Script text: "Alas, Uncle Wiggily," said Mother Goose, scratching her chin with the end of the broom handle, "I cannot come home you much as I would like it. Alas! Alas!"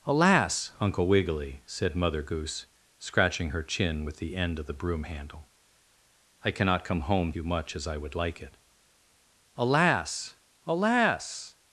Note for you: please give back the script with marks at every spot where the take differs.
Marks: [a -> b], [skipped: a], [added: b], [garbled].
"Alas, Uncle Wiggily," said Mother Goose, scratching her chin with the end of the broom handle, "I cannot come home you much as I would like it. Alas! Alas!"